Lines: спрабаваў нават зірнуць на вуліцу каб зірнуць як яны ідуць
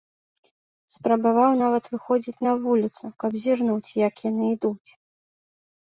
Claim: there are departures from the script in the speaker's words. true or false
true